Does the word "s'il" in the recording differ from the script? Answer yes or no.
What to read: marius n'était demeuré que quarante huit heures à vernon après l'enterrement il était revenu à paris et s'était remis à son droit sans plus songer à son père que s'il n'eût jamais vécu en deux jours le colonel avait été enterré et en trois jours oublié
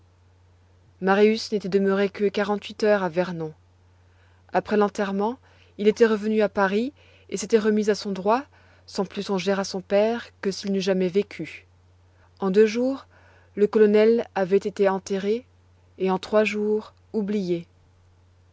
no